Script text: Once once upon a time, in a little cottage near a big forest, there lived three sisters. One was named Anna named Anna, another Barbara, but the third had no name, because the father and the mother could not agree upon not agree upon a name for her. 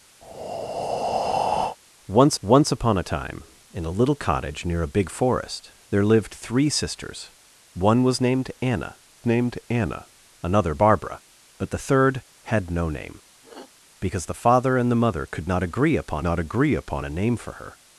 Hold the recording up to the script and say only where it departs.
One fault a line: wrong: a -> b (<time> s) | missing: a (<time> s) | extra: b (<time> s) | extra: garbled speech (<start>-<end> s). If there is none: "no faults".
no faults